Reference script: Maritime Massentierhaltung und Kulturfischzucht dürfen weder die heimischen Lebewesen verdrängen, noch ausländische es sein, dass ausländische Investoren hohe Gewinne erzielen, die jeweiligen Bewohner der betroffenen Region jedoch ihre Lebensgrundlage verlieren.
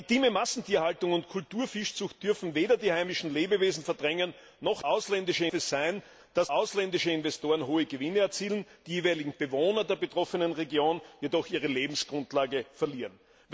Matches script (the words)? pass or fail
pass